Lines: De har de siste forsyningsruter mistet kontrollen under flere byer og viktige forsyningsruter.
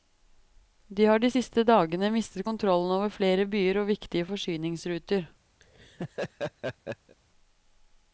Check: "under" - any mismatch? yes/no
yes